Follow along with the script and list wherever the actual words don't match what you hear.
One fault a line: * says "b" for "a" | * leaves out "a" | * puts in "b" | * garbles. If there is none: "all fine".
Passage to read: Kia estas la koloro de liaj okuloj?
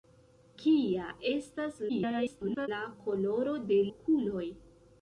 * garbles
* leaves out "liaj"